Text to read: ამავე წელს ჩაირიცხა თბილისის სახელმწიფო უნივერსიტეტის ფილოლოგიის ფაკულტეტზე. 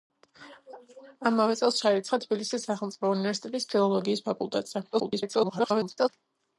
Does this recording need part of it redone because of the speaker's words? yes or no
yes